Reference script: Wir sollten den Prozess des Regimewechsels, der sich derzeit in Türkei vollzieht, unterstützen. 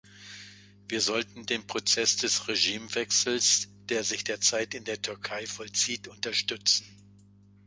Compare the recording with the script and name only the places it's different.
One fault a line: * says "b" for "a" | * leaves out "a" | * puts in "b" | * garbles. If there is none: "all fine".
* puts in "der"